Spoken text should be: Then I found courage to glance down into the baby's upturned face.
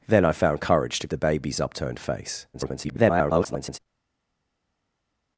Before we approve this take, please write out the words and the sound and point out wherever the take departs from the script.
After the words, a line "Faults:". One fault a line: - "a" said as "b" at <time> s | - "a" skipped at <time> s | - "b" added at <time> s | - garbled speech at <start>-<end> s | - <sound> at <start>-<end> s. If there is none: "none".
Then I found courage to the baby's upturned face. [garbled]
Faults:
- "glance down into" skipped at 1.1 s
- garbled speech at 2.5-3.8 s